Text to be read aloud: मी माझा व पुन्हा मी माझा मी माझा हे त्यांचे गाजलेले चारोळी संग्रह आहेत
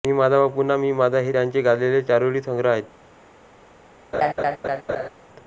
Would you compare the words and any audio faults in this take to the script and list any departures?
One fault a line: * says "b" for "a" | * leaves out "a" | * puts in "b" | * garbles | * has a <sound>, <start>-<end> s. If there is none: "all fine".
* leaves out "मी माझा"
* has a laugh, 4.1-5.1 s